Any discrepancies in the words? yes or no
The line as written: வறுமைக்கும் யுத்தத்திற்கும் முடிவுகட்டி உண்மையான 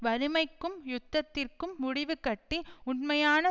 no